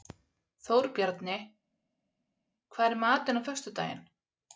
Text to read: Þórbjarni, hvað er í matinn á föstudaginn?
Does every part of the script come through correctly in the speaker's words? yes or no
yes